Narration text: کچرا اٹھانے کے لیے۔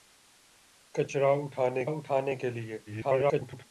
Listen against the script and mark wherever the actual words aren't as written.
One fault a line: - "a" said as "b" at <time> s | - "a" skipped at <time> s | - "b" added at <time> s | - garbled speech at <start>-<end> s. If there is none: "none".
- "اٹھانے" added at 1.8 s
- garbled speech at 2.9-3.7 s